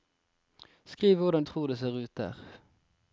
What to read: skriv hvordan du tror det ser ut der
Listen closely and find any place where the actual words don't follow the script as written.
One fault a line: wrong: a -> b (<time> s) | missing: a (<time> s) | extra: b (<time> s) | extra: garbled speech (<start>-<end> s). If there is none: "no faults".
missing: du (1.4 s)